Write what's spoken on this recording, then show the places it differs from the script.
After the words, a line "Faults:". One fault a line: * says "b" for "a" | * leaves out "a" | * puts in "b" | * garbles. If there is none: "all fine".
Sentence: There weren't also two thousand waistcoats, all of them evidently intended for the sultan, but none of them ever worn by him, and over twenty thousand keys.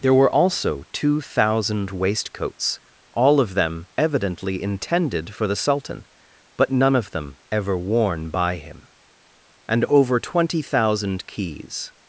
There were also two thousand waistcoats, all of them evidently intended for the sultan, but none of them ever worn by him, and over twenty thousand keys.
Faults:
* says "were" for "weren't"